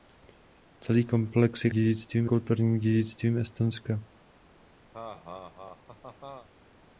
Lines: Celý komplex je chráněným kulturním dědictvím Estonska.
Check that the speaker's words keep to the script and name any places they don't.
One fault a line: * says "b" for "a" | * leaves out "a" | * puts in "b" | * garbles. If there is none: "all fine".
* says "dědictvím" for "chráněným"